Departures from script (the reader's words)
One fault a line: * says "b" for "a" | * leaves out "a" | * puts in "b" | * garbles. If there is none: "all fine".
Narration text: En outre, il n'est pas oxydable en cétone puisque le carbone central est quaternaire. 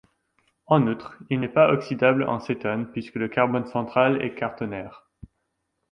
all fine